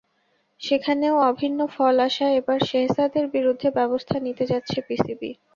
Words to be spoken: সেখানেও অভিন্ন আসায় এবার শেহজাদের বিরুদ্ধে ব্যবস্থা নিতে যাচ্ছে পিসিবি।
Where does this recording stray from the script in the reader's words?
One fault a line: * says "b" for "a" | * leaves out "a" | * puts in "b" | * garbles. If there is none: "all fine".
* puts in "ফল"